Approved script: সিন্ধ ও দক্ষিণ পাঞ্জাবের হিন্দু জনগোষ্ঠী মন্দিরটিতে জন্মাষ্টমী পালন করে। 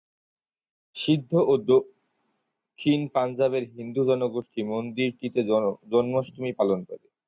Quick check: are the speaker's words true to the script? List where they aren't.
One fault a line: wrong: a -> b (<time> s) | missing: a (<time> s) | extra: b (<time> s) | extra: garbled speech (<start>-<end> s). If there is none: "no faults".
no faults